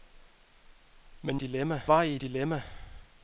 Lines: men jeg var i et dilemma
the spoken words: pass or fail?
fail